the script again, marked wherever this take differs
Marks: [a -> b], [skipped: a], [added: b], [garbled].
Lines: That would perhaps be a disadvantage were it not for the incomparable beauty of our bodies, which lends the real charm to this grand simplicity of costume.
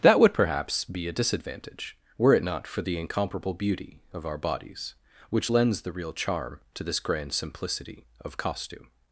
That would perhaps be a disadvantage were it not for the incomparable beauty of our bodies, which lends the real charm to this grand simplicity of costume.